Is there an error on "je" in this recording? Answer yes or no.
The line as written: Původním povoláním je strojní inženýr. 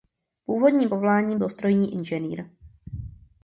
yes